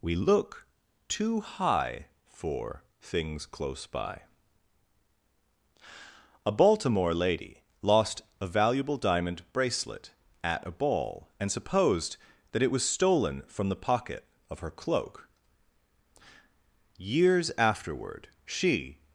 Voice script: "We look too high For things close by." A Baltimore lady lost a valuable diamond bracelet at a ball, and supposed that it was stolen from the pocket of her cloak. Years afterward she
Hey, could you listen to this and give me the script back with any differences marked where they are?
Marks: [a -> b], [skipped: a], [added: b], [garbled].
"We look too high For things close by." A Baltimore lady lost a valuable diamond bracelet at a ball, and supposed that it was stolen from the pocket of her cloak. Years afterward she